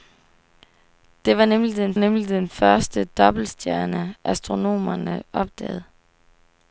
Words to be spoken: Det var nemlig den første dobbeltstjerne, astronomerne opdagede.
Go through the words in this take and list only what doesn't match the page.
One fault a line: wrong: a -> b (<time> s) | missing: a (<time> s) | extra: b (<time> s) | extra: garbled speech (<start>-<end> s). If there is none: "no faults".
extra: nemlig den (2.0 s)